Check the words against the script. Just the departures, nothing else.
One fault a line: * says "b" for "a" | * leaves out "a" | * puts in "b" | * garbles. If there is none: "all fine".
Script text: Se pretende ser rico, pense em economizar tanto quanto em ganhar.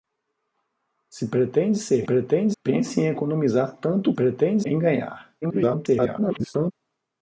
* says "pretende" for "rico"
* says "pretende" for "quanto"
* garbles